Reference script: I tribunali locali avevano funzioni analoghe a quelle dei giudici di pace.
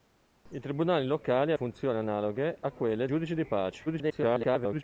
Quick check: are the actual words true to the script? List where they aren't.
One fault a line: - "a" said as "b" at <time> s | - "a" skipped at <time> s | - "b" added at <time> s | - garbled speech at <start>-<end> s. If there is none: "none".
- "avevano" skipped at 1.5 s
- "dei" skipped at 3.1 s
- garbled speech at 3.9-4.8 s